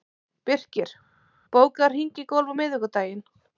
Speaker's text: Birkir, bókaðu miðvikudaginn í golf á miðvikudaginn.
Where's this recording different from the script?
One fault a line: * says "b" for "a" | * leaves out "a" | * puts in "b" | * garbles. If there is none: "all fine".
* says "hring" for "miðvikudaginn"